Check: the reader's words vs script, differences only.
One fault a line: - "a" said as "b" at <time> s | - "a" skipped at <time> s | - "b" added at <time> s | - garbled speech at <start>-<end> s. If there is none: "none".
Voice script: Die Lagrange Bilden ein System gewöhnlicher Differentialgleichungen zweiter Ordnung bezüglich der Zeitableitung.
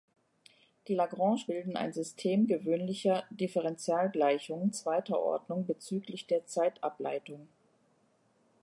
none